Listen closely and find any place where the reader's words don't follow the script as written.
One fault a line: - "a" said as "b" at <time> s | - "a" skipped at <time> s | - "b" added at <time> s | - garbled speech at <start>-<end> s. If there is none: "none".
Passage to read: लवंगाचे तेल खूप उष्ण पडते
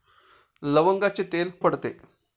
- "खूप उष्ण" skipped at 1.5 s